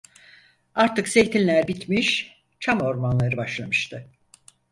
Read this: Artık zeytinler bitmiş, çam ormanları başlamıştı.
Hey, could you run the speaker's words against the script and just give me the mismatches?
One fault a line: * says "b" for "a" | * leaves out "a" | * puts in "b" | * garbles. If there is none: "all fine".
all fine